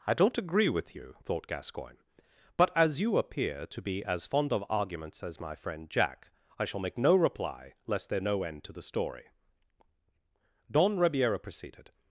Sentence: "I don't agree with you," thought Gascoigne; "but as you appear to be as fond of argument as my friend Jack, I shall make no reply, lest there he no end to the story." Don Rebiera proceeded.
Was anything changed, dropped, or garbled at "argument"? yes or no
yes